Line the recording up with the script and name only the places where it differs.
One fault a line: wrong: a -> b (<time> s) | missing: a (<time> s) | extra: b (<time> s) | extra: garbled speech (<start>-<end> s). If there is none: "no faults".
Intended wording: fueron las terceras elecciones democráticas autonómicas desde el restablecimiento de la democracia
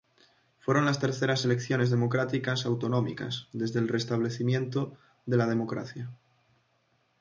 no faults